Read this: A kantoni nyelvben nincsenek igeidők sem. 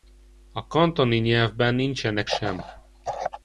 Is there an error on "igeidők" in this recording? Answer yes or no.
yes